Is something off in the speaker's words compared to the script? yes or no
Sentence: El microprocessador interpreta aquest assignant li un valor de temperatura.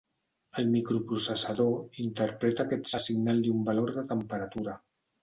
no